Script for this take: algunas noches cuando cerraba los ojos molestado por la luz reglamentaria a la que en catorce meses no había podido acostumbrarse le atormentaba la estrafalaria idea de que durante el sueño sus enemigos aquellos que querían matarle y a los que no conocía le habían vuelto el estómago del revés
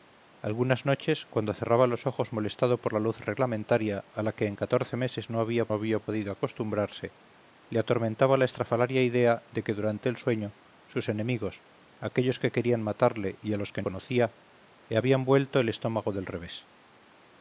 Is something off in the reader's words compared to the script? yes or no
yes